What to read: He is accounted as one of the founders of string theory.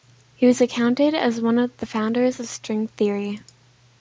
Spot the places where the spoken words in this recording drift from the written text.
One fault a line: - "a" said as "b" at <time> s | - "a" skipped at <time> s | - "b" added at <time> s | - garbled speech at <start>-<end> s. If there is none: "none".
- "is" said as "was" at 0.5 s